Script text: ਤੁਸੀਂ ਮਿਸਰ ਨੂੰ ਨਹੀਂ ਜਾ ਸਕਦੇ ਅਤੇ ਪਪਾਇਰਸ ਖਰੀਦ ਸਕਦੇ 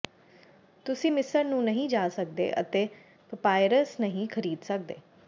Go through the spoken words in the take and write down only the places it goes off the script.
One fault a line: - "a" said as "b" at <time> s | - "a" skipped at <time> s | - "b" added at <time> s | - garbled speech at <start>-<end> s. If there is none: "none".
- "ਨਹੀਂ" added at 4.0 s